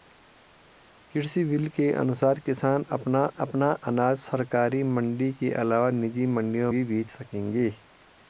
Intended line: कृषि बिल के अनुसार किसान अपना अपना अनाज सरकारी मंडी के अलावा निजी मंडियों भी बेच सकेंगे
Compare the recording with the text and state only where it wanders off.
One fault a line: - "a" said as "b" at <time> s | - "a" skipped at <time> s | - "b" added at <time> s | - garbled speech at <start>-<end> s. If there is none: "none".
none